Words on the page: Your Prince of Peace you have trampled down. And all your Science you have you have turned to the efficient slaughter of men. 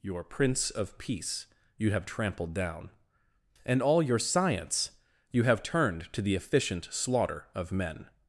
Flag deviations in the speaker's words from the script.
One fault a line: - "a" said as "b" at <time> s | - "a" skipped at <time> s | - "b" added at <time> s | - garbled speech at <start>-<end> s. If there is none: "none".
- "you have" skipped at 5.6 s